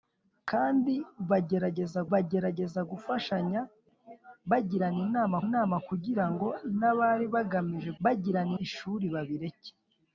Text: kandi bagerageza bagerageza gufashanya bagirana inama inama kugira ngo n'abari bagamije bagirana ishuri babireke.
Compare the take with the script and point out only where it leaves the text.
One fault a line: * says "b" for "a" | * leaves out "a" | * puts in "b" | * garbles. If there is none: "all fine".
all fine